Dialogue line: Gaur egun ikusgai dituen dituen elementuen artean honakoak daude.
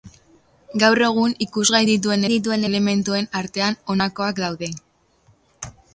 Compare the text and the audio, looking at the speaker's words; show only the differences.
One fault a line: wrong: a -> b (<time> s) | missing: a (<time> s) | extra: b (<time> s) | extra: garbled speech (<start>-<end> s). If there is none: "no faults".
no faults